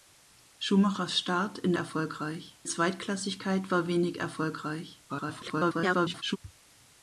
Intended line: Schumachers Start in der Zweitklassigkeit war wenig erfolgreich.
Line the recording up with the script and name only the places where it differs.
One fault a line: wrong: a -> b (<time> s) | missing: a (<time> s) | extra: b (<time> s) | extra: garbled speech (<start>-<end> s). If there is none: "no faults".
wrong: der -> erfolgreich (1.7 s)
extra: garbled speech (5.1-6.4 s)